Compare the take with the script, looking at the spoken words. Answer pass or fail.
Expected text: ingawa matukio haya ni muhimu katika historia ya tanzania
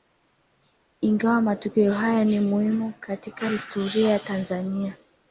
pass